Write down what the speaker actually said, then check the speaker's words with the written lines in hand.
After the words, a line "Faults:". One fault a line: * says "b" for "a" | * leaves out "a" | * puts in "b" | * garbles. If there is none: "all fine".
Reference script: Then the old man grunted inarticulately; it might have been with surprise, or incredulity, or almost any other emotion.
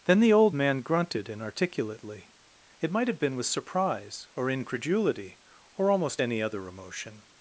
Then the old man grunted inarticulately; it might have been with surprise, or incredulity, or almost any other emotion.
Faults:
all fine